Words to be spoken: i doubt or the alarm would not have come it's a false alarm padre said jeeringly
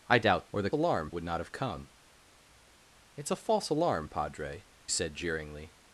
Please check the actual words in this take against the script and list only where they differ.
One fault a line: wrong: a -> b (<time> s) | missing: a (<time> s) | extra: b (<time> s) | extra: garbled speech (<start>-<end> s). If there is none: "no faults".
no faults